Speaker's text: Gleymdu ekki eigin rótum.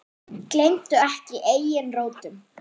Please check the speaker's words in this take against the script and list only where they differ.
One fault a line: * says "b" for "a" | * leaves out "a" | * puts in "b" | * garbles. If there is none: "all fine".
all fine